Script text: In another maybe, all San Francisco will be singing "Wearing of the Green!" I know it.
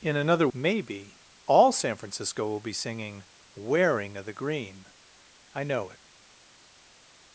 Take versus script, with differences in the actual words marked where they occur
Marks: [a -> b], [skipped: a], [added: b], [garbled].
In another maybe, all San Francisco will be singing "Wearing of the Green!" I know it.